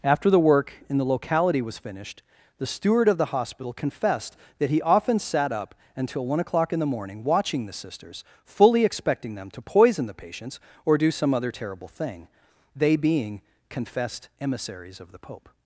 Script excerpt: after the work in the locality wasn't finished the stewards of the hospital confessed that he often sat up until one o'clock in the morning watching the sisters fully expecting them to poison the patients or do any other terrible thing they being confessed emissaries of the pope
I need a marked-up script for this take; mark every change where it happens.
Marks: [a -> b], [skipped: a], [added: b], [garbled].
after the work in the locality [wasn't -> was] finished the [stewards -> steward] of the hospital confessed that he often sat up until one o'clock in the morning watching the sisters fully expecting them to poison the patients or do [any -> some] other terrible thing they being confessed emissaries of the pope